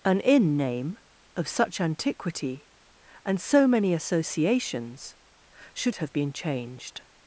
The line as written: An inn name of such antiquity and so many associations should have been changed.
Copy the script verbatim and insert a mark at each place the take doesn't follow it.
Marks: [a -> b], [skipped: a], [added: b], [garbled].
An inn name of such antiquity and so many associations should have been changed.